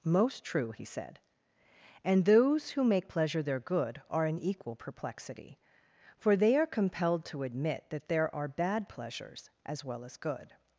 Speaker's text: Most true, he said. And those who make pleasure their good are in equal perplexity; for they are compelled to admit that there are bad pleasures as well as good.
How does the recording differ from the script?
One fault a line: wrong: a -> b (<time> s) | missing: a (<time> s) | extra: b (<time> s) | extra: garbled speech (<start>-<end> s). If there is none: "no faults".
no faults